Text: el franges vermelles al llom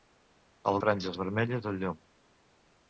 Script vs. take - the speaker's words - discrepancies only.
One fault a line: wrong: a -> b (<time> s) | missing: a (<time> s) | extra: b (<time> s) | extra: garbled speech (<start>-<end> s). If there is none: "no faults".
no faults